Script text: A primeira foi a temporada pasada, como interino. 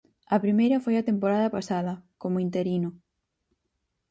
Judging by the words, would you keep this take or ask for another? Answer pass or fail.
pass